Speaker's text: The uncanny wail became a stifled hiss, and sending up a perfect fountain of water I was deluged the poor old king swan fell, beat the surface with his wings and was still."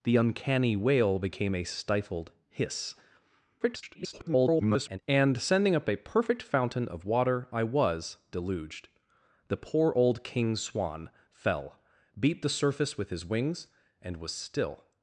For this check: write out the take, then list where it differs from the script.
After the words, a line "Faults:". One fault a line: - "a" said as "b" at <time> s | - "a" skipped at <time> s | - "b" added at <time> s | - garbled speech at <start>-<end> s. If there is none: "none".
The uncanny wail became a stifled hiss, [garbled] and sending up a perfect fountain of water I was deluged the poor old king swan fell, beat the surface with his wings and was still."
Faults:
- garbled speech at 3.6-5.0 s